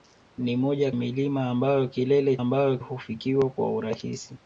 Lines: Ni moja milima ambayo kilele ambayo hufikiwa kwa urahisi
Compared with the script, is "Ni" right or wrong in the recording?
right